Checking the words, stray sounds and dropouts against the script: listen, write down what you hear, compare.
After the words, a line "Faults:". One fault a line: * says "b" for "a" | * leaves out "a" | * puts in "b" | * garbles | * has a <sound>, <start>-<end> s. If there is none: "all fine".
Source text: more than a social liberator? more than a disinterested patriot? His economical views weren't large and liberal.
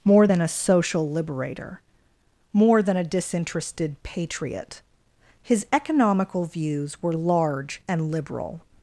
more than a social liberator? more than a disinterested patriot? His economical views were large and liberal.
Faults:
* says "were" for "weren't"